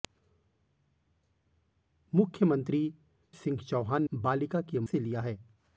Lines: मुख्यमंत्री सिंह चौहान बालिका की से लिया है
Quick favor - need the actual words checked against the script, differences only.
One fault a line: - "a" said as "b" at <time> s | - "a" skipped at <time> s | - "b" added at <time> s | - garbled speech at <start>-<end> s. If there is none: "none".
none